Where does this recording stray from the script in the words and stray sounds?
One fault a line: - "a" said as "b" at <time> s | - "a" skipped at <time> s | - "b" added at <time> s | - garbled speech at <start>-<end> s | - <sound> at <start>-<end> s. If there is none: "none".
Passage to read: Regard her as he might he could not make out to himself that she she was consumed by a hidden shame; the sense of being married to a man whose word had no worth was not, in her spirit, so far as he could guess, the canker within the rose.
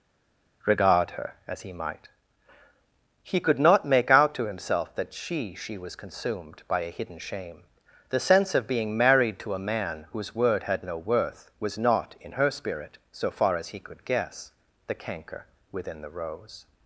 none